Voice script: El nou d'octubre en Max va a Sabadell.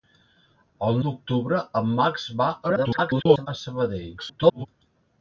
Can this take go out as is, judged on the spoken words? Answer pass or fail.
fail